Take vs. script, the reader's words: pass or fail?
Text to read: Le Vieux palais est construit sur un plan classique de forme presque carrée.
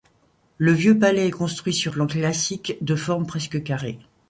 fail